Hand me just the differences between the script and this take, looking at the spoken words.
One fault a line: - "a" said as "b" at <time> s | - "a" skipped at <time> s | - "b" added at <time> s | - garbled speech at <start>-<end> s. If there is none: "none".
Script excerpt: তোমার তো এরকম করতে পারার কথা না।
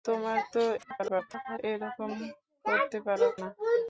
- garbled speech at 0.8-1.6 s
- "কথা" skipped at 3.3 s